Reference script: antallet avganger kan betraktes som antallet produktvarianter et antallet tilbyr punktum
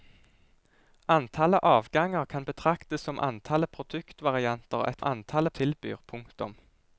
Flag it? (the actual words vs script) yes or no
no